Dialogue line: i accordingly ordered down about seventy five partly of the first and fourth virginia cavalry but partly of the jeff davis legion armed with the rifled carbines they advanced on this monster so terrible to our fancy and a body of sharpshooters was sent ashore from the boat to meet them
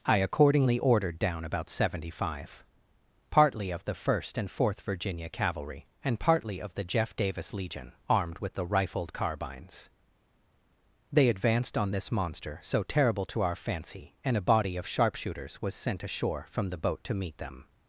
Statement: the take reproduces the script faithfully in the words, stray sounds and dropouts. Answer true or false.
false